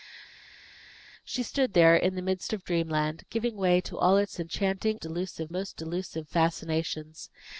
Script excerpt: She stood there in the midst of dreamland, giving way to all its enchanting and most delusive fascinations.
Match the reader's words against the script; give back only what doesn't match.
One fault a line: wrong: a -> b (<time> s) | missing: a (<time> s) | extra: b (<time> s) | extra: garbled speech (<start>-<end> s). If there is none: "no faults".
wrong: and -> delusive (5.0 s)